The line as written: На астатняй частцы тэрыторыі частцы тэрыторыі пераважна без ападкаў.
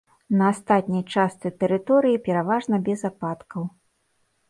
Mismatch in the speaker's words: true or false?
true